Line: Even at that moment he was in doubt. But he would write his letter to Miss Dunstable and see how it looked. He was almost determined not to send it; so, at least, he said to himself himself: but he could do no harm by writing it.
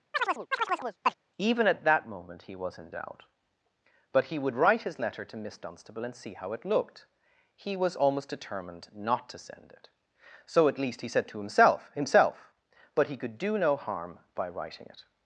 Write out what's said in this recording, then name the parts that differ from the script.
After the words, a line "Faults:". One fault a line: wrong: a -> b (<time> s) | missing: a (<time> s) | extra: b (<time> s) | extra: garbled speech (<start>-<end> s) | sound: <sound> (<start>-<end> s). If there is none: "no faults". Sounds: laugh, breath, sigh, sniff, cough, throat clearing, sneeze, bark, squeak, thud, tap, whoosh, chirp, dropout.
Even at that moment he was in doubt. But he would write his letter to Miss Dunstable and see how it looked. He was almost determined not to send it; so, at least, he said to himself himself: but he could do no harm by writing it.
Faults:
sound: chirp (0.1-1.2 s)